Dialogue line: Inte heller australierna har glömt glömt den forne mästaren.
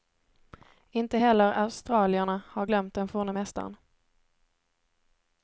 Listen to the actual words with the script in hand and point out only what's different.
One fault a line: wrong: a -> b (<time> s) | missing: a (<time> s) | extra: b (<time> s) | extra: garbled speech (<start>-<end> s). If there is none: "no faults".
missing: glömt (2.9 s)